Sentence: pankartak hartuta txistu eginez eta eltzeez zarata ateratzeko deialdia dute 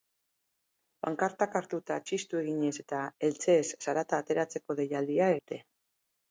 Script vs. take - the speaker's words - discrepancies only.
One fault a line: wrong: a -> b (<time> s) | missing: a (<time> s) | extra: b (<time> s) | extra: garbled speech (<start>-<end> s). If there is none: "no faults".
no faults